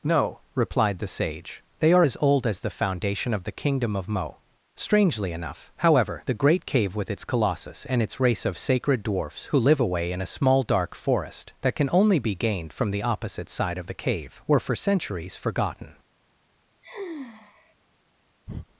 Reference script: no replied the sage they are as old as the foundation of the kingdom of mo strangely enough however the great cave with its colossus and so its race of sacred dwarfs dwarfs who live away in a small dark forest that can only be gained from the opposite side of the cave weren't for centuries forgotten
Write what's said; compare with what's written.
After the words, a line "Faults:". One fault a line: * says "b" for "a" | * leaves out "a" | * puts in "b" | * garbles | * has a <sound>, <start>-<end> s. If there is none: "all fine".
no replied the sage they are as old as the foundation of the kingdom of mo strangely enough however the great cave with its colossus and its race of sacred dwarfs who live away in a small dark forest that can only be gained from the opposite side of the cave were for centuries forgotten
Faults:
* leaves out "so"
* leaves out "dwarfs"
* says "were" for "weren't"
* has a sigh, 16.8-17.8 s
* has a breath, 18.5-18.7 s